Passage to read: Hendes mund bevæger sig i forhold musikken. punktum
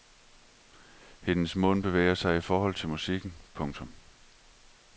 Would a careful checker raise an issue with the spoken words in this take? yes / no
yes